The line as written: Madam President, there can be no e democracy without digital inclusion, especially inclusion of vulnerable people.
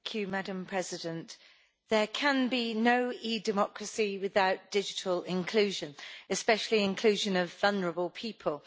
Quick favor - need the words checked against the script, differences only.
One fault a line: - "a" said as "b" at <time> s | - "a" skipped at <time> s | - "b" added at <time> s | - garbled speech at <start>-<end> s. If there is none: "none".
none